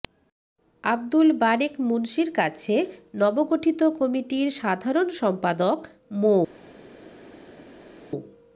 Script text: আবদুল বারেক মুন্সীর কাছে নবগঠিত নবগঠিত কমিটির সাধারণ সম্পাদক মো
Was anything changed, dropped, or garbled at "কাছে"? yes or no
no